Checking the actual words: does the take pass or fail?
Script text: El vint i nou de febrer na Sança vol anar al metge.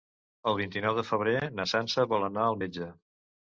pass